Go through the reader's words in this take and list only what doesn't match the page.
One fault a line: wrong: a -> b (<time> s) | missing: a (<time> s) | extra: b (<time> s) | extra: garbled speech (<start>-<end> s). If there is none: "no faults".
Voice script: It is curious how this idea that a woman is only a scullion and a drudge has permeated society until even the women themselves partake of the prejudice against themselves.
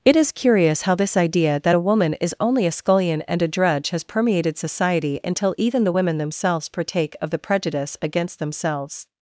no faults